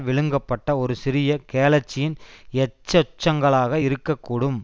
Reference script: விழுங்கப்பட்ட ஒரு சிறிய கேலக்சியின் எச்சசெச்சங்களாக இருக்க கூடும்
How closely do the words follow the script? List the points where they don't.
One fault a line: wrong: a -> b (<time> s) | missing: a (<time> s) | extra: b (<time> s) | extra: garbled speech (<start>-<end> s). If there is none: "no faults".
no faults